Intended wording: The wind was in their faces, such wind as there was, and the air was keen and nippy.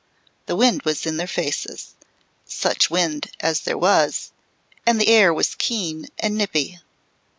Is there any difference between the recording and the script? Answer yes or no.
no